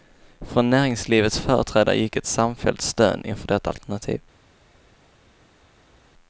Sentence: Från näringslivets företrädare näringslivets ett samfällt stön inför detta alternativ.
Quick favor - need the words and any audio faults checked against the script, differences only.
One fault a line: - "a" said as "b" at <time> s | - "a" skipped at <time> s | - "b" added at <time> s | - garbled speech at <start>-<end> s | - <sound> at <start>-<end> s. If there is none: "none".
- "näringslivets" said as "gick" at 1.9 s